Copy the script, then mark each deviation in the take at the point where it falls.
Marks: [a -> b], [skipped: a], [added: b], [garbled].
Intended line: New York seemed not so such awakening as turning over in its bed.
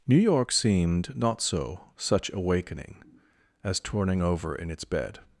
New York seemed not so such awakening as turning over in its bed.